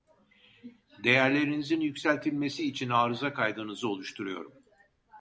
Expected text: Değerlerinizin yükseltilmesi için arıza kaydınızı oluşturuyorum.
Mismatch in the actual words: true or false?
false